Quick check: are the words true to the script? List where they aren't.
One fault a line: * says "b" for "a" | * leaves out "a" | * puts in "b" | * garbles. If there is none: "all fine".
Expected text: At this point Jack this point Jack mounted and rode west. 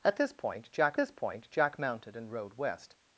all fine